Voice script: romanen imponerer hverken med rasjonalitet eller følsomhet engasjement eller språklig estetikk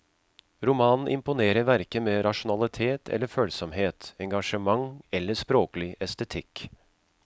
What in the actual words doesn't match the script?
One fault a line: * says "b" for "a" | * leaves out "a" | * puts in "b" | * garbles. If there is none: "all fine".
all fine